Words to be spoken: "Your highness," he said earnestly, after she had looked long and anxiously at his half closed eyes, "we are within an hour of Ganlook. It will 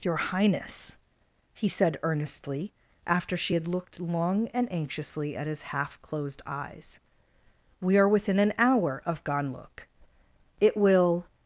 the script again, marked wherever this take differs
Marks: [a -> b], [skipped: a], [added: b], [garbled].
"Your highness," he said earnestly, after she had looked long and anxiously at his half closed eyes, "we are within an hour of Ganlook. It will